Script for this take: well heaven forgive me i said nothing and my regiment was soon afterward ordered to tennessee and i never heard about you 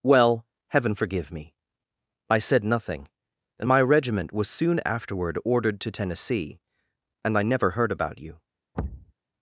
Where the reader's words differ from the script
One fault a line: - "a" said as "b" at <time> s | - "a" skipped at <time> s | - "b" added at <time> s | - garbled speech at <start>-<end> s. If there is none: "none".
none